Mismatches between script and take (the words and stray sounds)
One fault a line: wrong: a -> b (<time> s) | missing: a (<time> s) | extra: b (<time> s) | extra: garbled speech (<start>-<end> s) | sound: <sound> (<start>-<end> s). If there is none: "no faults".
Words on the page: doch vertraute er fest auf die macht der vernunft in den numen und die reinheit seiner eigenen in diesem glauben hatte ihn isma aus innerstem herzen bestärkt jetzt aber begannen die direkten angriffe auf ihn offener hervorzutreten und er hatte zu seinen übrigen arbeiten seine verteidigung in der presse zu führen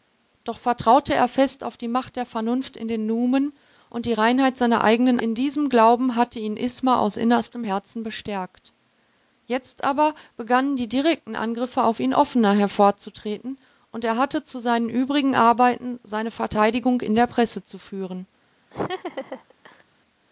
sound: laugh (18.7-19.8 s)